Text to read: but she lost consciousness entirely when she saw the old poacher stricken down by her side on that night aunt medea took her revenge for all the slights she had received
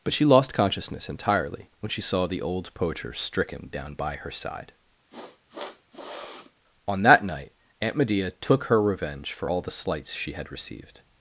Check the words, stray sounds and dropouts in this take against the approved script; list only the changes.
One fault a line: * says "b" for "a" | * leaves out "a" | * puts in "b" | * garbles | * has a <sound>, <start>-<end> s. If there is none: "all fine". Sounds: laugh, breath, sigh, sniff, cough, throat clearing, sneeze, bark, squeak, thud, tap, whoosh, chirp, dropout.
* has a sniff, 5.1-6.5 s